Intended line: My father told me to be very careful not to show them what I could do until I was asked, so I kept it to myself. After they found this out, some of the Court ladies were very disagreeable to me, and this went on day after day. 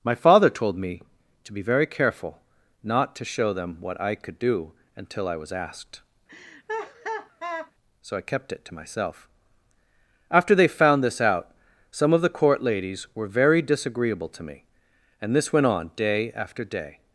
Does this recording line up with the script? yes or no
yes